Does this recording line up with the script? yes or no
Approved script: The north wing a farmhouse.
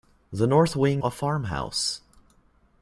yes